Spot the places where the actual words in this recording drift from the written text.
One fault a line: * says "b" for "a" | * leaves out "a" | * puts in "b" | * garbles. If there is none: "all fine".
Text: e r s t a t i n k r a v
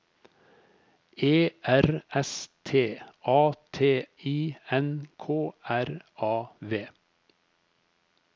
all fine